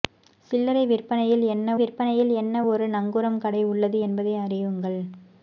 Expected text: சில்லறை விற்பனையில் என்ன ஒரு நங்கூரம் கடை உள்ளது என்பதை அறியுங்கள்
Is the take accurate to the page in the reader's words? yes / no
no